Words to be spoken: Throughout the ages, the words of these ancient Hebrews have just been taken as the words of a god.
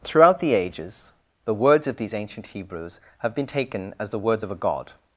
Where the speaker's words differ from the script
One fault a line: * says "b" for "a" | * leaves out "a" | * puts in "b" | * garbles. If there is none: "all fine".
* leaves out "just"